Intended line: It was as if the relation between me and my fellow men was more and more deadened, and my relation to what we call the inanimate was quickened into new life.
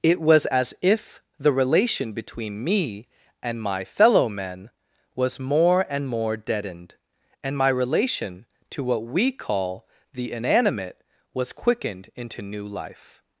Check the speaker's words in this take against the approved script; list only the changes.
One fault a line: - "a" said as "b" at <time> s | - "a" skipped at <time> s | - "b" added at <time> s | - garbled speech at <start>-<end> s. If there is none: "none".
none